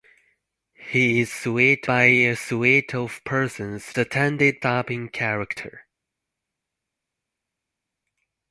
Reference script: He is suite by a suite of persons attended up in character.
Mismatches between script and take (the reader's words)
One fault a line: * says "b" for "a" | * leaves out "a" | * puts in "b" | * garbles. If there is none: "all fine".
all fine